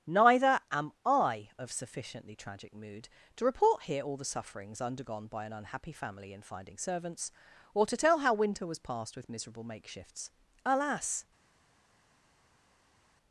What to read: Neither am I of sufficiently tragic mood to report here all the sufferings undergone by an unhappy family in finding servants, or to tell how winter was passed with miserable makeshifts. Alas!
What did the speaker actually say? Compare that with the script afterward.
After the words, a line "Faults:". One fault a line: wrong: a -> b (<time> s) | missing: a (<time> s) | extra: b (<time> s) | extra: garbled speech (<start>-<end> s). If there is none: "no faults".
Neither am I of sufficiently tragic mood to report here all the sufferings undergone by an unhappy family in finding servants, or to tell how winter was passed with miserable makeshifts. Alas!
Faults:
no faults